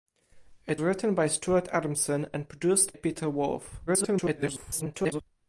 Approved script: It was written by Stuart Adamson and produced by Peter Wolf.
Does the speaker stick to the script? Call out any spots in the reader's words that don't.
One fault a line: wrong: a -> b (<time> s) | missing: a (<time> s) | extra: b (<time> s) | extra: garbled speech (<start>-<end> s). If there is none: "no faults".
missing: was (0.8 s)
missing: by (2.9 s)
extra: garbled speech (3.9-5.2 s)